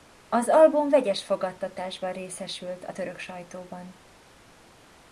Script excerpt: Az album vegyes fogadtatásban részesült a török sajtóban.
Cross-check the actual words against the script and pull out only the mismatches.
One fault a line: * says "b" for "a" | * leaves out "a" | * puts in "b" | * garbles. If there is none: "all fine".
all fine